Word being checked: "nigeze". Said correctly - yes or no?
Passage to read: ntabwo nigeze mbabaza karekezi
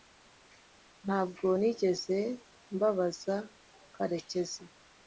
yes